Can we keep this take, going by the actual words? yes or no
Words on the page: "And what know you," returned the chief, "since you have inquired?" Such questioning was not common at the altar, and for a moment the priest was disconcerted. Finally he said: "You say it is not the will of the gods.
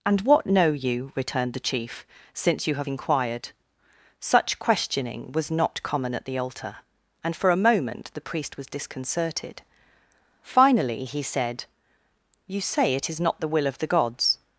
yes